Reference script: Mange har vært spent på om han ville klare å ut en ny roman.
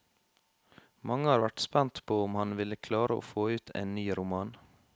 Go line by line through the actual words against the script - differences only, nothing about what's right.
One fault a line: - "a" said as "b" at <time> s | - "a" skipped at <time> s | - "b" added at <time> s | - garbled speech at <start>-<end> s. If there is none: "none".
- "få" added at 3.3 s